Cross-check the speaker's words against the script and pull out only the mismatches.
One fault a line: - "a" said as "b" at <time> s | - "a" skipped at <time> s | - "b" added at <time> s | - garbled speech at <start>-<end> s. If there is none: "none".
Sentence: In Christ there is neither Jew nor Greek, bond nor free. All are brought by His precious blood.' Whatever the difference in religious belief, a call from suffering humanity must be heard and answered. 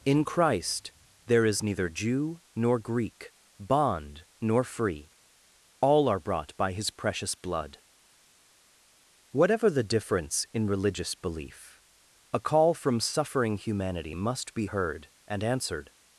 none